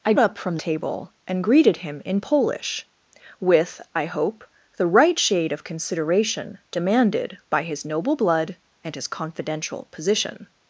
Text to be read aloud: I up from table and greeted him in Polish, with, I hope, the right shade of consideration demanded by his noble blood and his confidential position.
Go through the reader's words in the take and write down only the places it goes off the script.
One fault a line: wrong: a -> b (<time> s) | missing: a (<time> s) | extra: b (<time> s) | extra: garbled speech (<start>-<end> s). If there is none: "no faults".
no faults